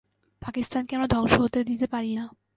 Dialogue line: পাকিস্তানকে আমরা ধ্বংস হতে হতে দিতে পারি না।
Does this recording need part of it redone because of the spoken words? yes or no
yes